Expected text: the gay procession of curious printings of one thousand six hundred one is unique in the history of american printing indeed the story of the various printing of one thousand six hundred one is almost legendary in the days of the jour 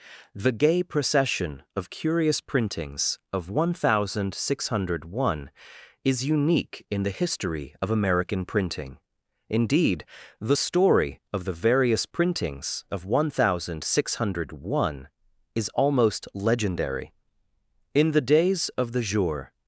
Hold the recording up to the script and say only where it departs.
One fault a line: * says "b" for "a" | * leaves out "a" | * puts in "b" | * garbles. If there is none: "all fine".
* says "printings" for "printing"